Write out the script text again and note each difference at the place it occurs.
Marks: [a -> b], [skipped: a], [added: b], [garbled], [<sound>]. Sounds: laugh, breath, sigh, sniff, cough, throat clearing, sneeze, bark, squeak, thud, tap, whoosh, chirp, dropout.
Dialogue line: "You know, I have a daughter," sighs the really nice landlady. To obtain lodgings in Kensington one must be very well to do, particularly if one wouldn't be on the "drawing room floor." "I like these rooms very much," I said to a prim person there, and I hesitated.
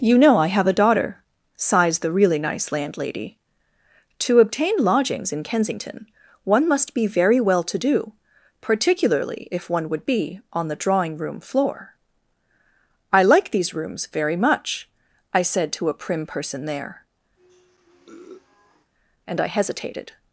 "You know, I have a daughter," sighs the really nice landlady. To obtain lodgings in Kensington one must be very well to do, particularly if one [wouldn't -> would] be on the "drawing room floor." "I like these rooms very much," I said to a prim person there, [sniff] and I hesitated.